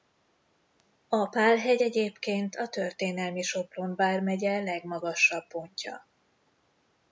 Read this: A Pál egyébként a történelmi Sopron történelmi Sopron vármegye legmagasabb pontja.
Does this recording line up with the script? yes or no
no